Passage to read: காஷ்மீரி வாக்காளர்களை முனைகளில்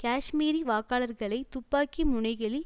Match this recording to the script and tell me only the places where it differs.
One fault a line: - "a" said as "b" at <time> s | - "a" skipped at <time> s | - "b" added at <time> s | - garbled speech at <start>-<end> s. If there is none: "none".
- "துப்பாக்கி" added at 1.5 s